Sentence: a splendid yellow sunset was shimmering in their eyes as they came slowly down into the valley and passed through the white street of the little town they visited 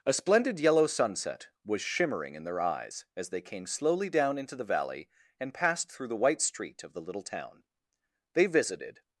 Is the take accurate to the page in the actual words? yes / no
yes